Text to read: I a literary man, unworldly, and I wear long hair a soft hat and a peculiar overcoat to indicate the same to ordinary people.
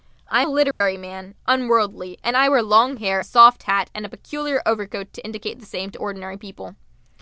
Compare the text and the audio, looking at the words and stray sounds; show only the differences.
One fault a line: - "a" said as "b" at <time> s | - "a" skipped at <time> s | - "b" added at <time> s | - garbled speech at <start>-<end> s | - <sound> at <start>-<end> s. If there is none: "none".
- dropout at 0.7-0.8 s